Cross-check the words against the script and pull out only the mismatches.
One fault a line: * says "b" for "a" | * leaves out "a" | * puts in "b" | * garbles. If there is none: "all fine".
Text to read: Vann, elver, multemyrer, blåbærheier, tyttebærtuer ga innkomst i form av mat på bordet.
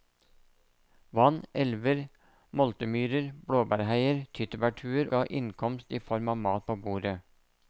all fine